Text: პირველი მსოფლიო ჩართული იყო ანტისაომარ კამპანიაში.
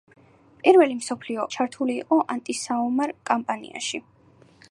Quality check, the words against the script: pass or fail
pass